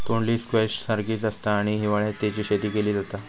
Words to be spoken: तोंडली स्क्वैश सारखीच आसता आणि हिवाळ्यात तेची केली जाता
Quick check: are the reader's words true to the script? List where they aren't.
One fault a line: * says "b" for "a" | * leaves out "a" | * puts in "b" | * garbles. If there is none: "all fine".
* puts in "शेती"